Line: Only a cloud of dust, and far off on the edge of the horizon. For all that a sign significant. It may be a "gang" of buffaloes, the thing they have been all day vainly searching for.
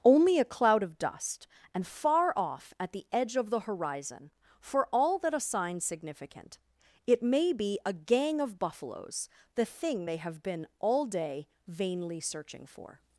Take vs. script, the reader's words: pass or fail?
fail